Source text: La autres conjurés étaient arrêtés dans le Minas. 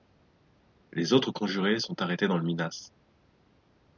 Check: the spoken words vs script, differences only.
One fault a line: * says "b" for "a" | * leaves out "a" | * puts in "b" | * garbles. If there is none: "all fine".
* says "Les" for "La"
* says "sont" for "étaient"